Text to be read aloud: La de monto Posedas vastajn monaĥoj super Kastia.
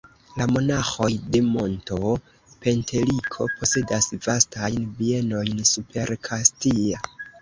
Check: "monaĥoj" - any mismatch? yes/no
yes